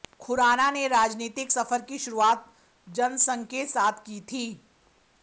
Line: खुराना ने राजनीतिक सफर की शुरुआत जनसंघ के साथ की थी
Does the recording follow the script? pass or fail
pass